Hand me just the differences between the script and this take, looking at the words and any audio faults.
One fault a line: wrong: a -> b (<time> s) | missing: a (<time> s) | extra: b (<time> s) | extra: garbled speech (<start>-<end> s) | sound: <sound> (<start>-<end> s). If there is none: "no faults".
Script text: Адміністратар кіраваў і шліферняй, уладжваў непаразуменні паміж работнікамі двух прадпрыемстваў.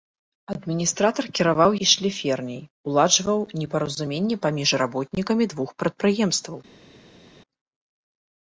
no faults